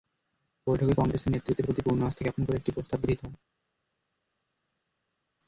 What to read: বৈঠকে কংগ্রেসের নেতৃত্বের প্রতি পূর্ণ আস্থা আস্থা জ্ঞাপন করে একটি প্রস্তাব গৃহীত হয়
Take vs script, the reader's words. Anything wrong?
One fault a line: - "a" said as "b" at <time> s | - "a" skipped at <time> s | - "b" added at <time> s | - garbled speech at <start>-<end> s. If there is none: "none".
- "আস্থা" skipped at 2.2 s